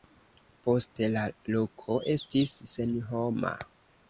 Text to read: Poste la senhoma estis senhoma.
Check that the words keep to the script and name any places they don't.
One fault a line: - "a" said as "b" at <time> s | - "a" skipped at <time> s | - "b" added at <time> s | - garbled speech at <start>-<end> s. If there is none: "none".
- "senhoma" said as "loko" at 1.5 s